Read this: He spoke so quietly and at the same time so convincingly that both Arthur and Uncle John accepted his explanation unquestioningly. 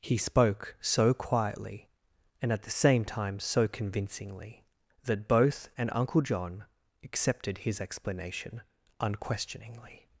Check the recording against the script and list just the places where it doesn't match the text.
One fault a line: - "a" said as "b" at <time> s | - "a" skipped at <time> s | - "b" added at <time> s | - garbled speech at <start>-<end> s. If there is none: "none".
- "Arthur" skipped at 5.7 s